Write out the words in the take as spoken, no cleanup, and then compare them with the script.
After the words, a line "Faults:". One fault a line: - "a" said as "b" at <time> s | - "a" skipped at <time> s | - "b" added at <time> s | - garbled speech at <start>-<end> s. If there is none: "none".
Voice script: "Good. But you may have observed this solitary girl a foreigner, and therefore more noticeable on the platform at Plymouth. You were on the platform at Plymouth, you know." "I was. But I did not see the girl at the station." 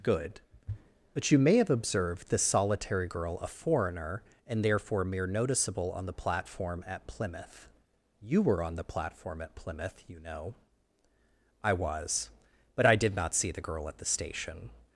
"Good. But you may have observed this solitary girl a foreigner, and therefore mere noticeable on the platform at Plymouth. You were on the platform at Plymouth, you know." "I was. But I did not see the girl at the station."
Faults:
- "more" said as "mere" at 5.0 s